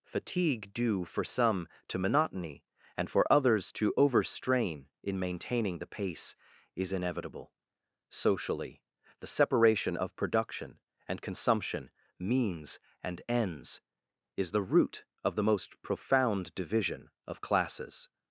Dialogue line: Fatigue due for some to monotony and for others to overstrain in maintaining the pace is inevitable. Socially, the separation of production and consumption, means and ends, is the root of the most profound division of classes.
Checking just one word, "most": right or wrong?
right